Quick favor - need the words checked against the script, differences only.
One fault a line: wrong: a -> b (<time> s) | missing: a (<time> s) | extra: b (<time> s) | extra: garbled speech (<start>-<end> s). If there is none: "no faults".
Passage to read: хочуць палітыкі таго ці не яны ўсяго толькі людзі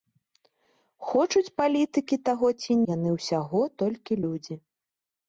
missing: не (2.8 s)